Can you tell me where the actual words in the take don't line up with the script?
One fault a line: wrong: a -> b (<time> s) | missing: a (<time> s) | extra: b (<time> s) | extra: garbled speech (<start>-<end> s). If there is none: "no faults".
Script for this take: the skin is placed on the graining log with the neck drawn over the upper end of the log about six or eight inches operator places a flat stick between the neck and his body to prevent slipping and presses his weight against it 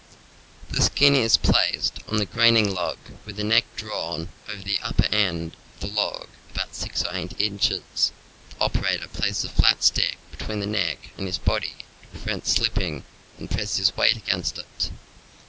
extra: the (8.5 s)